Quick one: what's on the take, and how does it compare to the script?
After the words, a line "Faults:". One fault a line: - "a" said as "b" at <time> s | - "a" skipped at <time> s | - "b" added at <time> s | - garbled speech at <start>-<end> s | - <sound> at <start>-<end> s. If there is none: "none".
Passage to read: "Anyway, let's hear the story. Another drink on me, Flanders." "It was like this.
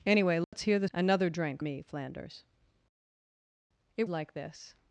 "Anyway, let's hear the. Another drink me, Flanders." "It like this.
Faults:
- dropout at 0.4-0.5 s
- "story" skipped at 0.9 s
- "on" skipped at 1.6 s
- "was" skipped at 4.1 s